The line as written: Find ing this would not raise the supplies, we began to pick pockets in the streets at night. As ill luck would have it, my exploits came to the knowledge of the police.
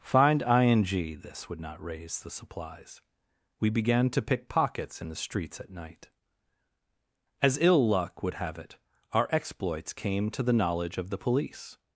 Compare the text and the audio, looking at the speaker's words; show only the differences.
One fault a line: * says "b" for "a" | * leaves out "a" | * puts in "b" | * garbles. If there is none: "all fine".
* says "our" for "my"